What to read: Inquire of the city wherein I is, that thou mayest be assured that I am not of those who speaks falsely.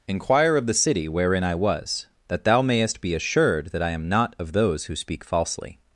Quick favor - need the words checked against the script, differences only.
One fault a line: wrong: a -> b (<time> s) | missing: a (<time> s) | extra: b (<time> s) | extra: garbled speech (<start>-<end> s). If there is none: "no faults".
wrong: is -> was (1.6 s)
wrong: speaks -> speak (5.0 s)